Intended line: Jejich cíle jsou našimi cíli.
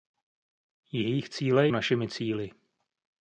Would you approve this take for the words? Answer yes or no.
no